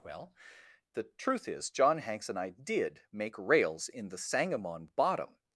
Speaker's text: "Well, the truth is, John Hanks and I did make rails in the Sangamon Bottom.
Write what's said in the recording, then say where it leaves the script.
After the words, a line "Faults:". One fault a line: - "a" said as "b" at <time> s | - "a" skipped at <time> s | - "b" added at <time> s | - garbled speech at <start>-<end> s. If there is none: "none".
"Well, the truth is, John Hanks and I did make rails in the Sangamon Bottom.
Faults:
none